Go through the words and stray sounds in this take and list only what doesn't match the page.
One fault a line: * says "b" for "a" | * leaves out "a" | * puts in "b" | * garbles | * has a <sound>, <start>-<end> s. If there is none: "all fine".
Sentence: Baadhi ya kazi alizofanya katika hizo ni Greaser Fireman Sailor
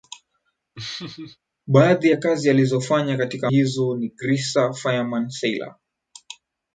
* has a laugh, 0.8-1.4 s